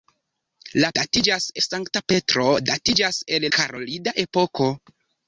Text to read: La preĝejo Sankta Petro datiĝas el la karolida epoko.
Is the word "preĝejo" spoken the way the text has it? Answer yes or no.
no